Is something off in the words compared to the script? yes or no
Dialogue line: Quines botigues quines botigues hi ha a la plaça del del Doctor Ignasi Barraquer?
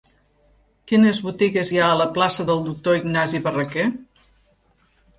yes